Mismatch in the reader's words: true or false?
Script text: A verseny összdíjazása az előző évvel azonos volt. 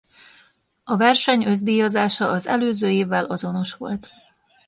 false